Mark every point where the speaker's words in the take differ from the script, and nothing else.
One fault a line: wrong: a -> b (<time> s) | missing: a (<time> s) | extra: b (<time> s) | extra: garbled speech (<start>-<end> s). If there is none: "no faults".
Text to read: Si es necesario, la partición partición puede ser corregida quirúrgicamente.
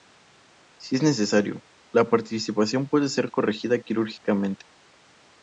missing: partición (2.9 s)